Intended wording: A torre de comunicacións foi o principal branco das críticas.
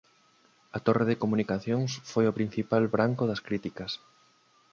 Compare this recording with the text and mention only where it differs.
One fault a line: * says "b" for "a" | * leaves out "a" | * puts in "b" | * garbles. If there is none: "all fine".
all fine